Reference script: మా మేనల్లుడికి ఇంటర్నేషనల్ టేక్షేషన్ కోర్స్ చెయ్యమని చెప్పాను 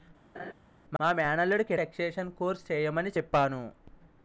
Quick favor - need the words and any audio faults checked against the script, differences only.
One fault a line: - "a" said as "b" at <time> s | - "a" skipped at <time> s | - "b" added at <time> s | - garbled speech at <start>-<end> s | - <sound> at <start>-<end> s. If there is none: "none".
- laugh at 0.3-0.5 s
- "ఇంటర్నేషనల్" skipped at 1.7 s